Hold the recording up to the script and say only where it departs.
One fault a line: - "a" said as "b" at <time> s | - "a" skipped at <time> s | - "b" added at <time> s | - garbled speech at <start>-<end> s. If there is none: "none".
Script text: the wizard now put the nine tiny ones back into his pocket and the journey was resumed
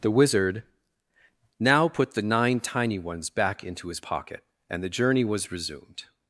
none